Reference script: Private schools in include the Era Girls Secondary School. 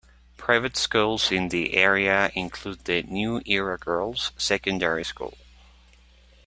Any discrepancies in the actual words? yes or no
yes